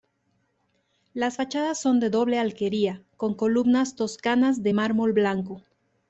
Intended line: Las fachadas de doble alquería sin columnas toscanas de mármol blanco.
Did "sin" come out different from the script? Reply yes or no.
yes